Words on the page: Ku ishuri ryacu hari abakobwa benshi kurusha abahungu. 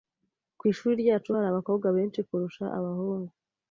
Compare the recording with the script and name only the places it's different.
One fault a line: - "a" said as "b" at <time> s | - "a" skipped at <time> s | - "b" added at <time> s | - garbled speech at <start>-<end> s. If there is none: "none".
none